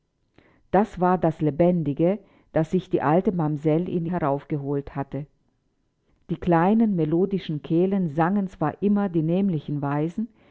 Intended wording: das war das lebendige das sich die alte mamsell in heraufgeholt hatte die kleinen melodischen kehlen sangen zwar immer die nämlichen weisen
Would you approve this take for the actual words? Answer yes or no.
yes